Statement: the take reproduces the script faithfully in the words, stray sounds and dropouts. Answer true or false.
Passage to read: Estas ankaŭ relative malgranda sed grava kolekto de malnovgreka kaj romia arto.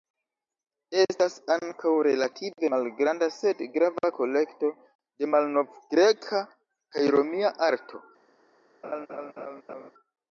false